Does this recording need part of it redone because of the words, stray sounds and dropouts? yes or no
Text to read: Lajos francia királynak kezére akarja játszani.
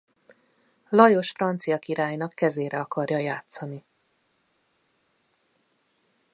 no